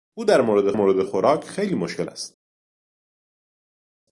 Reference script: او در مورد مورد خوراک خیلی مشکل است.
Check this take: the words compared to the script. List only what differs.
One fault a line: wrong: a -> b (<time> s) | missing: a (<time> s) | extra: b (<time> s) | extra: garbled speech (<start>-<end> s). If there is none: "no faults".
no faults